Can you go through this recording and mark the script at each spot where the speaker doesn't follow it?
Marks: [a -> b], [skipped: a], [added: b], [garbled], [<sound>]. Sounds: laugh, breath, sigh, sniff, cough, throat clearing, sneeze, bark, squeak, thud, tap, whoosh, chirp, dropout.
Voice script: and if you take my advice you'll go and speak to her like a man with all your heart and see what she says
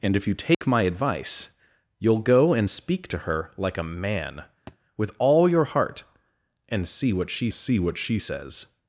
and if you take [dropout] my advice you'll go and speak to her like a man [thud] with all your heart and see what she [added: see what she] says